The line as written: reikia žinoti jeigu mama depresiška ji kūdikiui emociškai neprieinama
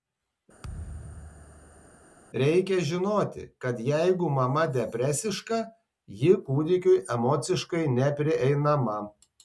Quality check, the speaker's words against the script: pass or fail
fail